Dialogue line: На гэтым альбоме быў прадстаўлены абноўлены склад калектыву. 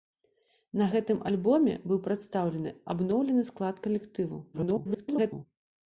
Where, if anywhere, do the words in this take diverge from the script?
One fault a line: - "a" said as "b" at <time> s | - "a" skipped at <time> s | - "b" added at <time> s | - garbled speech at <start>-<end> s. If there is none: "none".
- garbled speech at 4.5-5.5 s